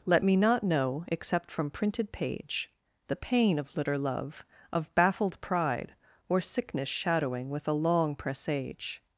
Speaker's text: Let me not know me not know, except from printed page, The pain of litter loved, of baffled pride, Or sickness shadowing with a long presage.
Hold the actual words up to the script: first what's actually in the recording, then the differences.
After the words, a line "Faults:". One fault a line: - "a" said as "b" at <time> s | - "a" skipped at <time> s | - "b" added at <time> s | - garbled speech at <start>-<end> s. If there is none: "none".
Let me not know, except from printed page, The pain of litter love, of baffled pride, Or sickness shadowing with a long presage.
Faults:
- "me not know" skipped at 1.1 s
- "loved" said as "love" at 4.0 s